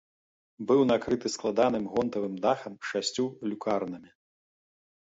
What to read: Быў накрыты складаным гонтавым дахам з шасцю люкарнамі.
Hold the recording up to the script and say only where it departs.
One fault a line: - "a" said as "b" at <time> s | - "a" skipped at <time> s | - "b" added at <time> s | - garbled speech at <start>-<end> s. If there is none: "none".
none